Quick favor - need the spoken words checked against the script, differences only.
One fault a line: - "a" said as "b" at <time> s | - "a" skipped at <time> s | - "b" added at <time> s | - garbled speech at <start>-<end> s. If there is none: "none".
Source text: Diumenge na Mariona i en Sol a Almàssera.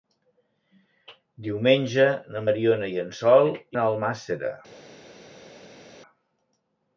none